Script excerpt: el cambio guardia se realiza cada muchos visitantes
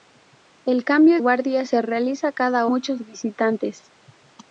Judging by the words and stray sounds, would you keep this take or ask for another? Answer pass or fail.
pass